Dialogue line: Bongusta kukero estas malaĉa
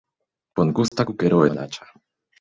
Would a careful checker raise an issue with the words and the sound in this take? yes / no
yes